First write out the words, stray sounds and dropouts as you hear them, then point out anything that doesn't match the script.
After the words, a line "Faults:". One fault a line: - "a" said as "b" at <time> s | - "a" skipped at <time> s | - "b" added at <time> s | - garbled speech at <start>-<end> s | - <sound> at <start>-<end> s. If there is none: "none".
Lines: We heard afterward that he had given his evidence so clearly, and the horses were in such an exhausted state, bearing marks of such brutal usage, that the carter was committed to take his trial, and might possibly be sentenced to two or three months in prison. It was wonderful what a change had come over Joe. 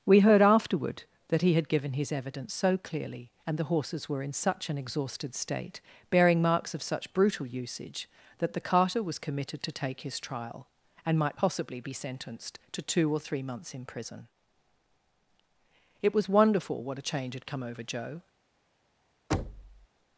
We heard afterward that he had given his evidence so clearly, and the horses were in such an exhausted state, bearing marks of such brutal usage, that the carter was committed to take his trial, and might possibly be sentenced to two or three months in prison. It was wonderful what a change had come over Joe.
Faults:
- thud at 19.3-19.9 s